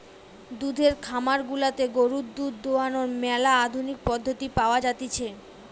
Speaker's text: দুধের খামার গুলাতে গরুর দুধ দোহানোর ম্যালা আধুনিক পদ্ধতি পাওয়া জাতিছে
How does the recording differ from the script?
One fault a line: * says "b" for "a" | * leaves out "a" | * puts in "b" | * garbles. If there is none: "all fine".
all fine